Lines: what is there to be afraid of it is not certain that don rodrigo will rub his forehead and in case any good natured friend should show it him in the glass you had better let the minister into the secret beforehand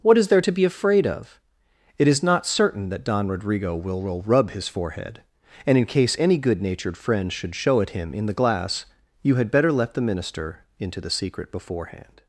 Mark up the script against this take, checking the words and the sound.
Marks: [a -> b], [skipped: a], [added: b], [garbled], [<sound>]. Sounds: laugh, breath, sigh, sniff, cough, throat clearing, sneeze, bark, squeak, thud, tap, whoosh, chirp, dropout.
what is there to be afraid of it is not certain that don rodrigo will [added: will] rub his forehead and in case any good natured friend should show it him in the glass you had better let the minister into the secret beforehand